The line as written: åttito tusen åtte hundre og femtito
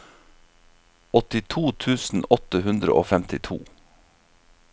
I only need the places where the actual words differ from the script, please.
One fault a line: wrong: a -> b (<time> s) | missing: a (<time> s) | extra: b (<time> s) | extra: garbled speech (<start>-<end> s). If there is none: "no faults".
no faults